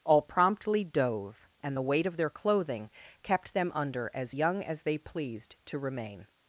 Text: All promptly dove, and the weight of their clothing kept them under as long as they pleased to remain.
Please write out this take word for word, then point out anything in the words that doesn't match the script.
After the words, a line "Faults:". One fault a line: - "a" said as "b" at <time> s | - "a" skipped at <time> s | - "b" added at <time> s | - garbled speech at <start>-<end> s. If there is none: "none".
All promptly dove, and the weight of their clothing kept them under as young as they pleased to remain.
Faults:
- "long" said as "young" at 4.3 s